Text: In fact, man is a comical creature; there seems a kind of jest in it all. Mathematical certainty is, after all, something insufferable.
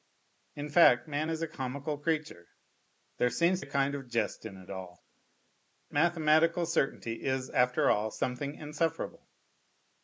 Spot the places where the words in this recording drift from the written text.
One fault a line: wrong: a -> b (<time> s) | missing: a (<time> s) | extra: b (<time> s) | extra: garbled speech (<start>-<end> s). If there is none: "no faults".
no faults